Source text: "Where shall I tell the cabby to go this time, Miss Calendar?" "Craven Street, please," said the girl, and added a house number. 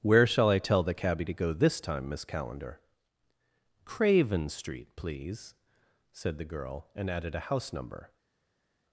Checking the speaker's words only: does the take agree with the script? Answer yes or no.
yes